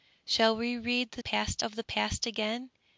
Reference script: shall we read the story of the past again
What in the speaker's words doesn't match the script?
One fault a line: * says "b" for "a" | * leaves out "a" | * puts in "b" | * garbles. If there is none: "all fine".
* says "past" for "story"